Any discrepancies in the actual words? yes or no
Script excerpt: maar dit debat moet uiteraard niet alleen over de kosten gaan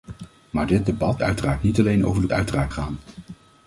yes